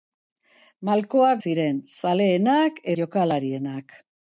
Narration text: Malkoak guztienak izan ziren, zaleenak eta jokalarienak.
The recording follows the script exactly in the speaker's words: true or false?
false